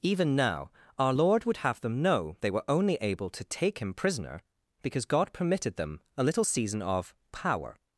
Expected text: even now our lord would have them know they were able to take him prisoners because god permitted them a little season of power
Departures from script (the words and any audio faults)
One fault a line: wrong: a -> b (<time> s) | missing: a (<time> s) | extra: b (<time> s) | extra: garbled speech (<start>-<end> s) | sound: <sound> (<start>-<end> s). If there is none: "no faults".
extra: only (2.7 s)
wrong: prisoners -> prisoner (3.9 s)